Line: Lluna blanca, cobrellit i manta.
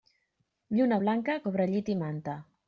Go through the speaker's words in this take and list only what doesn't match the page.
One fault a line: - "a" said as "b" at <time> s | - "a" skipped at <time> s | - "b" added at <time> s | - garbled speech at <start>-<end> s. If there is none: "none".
none